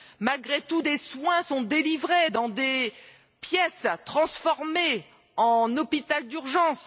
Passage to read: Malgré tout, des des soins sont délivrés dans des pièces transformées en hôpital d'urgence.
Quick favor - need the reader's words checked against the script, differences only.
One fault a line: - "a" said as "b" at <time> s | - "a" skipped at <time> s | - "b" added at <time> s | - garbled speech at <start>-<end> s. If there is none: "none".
- "des" skipped at 1.0 s